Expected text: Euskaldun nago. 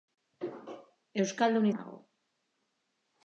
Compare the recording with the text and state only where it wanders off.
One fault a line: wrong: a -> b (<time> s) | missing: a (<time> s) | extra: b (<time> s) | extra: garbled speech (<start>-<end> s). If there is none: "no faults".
no faults